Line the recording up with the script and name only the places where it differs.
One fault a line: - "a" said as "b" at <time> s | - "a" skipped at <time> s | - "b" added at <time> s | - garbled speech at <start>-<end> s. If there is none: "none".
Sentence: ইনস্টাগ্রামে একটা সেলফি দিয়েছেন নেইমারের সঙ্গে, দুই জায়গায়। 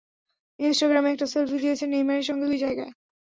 none